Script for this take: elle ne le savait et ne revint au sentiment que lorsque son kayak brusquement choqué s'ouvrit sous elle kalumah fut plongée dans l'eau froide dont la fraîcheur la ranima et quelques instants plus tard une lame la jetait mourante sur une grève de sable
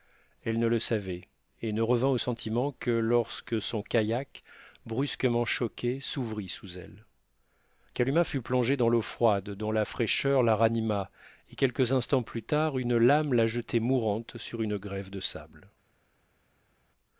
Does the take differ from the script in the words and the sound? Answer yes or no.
no